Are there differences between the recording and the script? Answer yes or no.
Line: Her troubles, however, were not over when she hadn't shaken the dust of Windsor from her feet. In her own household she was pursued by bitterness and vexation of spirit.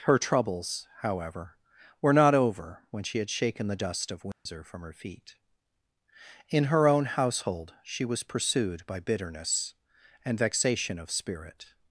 yes